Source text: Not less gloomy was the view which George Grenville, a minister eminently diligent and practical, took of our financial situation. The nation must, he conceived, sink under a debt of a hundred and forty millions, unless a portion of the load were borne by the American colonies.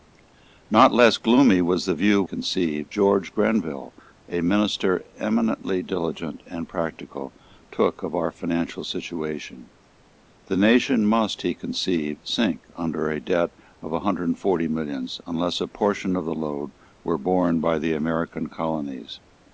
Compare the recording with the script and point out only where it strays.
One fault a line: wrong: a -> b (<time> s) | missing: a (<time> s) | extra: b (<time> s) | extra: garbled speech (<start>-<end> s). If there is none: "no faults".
wrong: which -> conceived (2.2 s)